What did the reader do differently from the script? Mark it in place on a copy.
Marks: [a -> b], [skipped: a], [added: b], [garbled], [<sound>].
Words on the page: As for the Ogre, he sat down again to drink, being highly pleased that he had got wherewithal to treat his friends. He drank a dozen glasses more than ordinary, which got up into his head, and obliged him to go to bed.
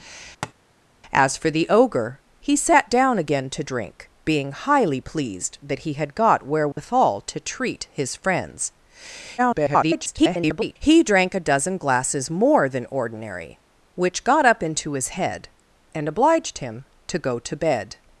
[tap] As for the Ogre, he sat down again to drink, being highly pleased that he had got wherewithal [dropout] to treat his friends. [garbled] He drank a dozen glasses more than ordinary, which got up into his head, and obliged him to go to bed.